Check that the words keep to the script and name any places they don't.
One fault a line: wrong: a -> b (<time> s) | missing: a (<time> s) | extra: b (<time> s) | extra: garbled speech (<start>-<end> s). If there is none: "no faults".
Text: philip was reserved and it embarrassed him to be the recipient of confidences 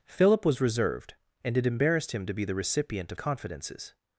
no faults